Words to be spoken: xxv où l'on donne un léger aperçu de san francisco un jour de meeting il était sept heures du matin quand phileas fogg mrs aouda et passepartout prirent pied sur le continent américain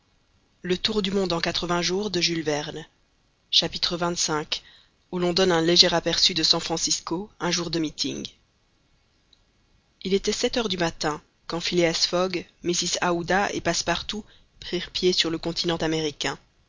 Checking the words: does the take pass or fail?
pass